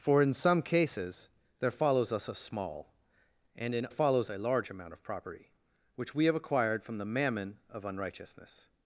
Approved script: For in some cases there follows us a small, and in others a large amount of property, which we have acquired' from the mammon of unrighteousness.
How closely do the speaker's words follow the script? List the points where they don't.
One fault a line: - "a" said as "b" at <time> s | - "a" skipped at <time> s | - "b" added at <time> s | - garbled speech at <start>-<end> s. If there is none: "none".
- "others" said as "follows" at 3.9 s